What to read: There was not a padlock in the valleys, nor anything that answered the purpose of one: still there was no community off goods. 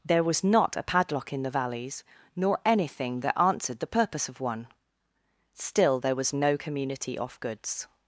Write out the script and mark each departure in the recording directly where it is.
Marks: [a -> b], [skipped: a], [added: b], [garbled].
There was not a padlock in the valleys, nor anything that answered the purpose of one: still there was no community off goods.